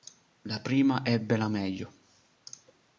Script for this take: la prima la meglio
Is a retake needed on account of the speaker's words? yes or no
yes